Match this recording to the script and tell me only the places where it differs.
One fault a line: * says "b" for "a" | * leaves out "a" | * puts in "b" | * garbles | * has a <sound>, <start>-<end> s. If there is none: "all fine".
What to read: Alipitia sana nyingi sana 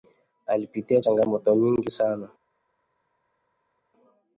* says "changamoto" for "sana"